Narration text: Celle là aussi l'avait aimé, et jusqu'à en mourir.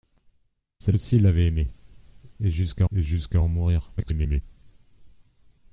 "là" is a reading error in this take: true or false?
true